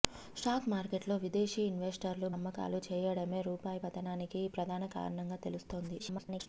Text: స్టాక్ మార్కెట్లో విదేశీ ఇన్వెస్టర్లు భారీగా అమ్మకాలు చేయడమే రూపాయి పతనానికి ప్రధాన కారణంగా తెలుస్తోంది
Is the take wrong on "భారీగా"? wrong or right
wrong